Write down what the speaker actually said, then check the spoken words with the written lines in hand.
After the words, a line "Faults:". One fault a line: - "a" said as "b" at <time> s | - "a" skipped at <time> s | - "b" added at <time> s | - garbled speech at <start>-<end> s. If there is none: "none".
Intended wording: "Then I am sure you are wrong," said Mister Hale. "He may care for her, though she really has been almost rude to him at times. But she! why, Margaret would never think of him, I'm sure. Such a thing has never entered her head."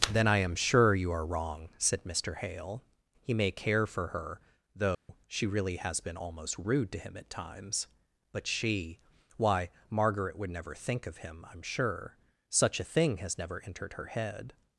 "Then I am sure you are wrong," said Mister Hale. "He may care for her, though she really has been almost rude to him at times. But she! why, Margaret would never think of him, I'm sure. Such a thing has never entered her head."
Faults:
none